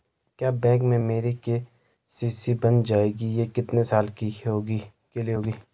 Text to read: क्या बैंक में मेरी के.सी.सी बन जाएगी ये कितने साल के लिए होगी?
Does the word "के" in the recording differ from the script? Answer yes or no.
no